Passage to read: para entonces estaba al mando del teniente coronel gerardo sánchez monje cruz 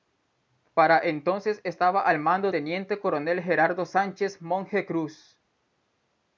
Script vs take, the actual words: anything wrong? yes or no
yes